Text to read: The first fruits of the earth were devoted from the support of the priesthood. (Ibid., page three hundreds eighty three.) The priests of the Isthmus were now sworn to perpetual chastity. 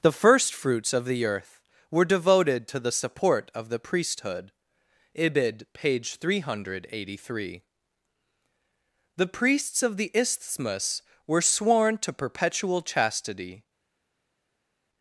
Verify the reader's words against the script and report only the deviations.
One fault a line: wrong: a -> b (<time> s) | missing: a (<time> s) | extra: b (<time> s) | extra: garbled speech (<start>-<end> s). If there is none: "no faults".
wrong: from -> to (2.7 s)
wrong: hundreds -> hundred (6.4 s)
missing: now (11.4 s)